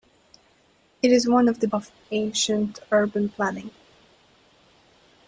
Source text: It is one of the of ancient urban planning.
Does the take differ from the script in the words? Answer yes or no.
no